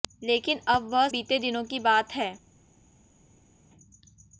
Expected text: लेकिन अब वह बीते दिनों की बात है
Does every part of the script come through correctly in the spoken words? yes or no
yes